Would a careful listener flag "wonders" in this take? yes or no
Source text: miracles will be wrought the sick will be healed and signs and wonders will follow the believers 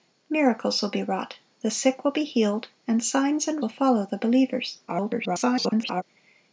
yes